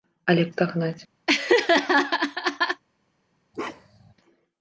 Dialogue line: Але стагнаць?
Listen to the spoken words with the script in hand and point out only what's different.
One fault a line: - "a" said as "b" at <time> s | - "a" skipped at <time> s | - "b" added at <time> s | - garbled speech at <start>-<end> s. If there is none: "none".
none